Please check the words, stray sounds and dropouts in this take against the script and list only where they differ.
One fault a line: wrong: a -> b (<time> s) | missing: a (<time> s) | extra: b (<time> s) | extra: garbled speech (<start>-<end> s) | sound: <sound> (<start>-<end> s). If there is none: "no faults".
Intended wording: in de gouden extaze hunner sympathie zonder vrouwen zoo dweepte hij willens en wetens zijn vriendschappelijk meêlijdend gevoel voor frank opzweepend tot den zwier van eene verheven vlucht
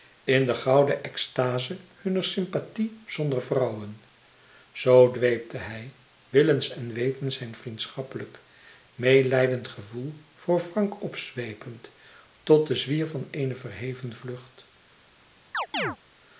sound: chirp (15.5-16.0 s)